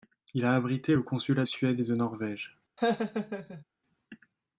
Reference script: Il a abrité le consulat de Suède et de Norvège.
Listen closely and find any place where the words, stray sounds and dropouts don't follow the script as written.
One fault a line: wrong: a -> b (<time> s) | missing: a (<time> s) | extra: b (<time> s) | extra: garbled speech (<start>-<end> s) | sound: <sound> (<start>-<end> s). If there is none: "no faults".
missing: de (1.4 s)
sound: laugh (2.8-3.6 s)